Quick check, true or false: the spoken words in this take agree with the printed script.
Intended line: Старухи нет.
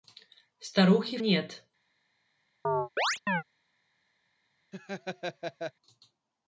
true